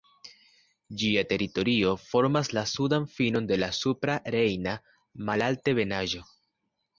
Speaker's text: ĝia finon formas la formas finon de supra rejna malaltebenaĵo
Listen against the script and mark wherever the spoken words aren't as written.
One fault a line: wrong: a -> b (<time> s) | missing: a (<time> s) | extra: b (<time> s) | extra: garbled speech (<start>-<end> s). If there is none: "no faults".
wrong: finon -> teritorio (1.3 s)
wrong: formas -> sudan (2.8 s)
extra: la (3.6 s)